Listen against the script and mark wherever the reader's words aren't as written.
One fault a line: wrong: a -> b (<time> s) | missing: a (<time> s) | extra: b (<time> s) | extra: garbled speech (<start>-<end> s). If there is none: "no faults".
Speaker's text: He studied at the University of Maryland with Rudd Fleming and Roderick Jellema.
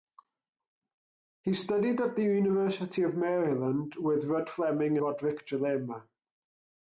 missing: and (5.0 s)